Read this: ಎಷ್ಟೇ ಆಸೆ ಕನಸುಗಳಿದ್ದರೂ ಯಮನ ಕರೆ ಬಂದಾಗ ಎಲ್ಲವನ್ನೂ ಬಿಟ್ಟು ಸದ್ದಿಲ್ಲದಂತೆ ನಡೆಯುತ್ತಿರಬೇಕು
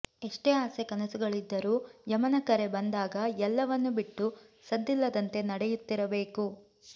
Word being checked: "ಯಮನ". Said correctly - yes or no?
yes